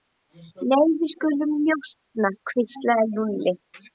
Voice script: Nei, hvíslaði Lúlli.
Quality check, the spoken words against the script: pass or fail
fail